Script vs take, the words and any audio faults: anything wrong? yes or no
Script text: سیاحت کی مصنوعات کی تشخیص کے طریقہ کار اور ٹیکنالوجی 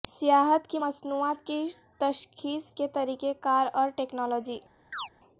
yes